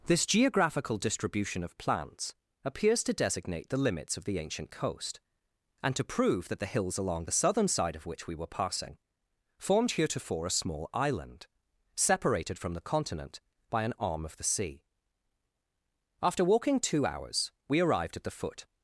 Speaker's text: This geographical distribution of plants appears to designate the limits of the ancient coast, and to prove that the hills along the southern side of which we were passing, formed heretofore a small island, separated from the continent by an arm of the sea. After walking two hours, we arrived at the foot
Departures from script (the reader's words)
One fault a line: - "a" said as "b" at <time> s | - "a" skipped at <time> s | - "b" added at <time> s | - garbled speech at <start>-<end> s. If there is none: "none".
none